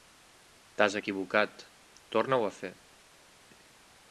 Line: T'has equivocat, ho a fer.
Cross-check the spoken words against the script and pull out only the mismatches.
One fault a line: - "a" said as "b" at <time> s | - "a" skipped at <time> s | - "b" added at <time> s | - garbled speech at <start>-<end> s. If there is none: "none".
- "torna" added at 2.2 s